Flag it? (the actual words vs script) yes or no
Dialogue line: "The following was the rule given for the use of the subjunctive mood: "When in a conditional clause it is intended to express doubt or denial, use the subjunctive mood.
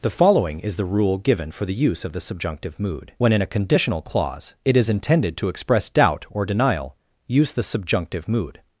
yes